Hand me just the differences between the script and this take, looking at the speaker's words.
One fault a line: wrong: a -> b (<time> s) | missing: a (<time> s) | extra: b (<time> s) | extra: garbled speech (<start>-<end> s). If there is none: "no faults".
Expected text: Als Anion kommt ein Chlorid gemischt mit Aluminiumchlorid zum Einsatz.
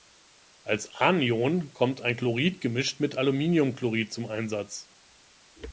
no faults